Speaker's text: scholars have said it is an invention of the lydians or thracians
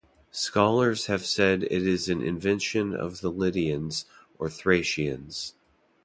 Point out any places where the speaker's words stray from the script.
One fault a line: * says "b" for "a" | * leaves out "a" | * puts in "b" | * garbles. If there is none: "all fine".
all fine